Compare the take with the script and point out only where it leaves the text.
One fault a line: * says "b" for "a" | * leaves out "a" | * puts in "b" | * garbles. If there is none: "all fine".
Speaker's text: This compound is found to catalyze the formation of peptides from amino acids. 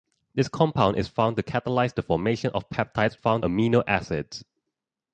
* says "found" for "from"